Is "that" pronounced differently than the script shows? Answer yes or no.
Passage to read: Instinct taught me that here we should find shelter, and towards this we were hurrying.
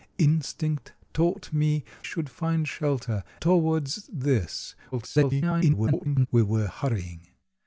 yes